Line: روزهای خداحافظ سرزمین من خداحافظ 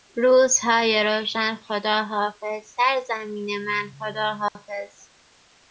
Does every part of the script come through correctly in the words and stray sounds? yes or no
no